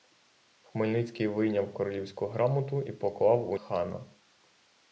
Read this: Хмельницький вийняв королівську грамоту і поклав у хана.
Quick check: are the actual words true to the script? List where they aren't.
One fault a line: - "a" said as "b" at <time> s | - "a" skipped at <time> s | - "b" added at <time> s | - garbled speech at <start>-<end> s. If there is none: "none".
none